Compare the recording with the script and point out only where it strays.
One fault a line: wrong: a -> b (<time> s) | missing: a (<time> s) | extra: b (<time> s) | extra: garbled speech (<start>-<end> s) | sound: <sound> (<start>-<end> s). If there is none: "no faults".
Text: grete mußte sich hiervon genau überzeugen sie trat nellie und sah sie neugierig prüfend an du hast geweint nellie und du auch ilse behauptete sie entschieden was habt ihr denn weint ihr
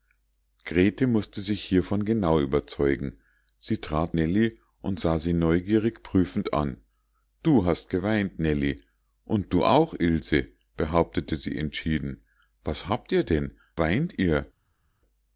no faults